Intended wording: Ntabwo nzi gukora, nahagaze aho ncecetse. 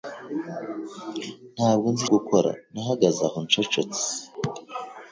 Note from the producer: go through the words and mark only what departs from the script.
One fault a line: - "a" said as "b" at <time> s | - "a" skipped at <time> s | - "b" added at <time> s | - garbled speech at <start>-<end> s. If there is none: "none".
none